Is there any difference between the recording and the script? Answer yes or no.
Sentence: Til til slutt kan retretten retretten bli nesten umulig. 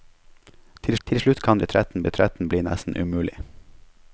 no